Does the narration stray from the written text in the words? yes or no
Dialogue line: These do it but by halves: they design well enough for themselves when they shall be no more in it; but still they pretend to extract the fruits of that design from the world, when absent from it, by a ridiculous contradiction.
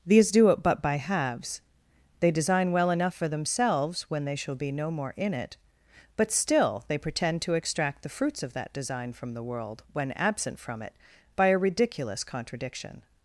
no